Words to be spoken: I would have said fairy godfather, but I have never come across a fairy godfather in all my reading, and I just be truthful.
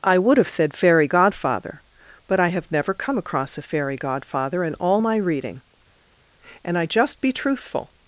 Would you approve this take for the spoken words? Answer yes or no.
yes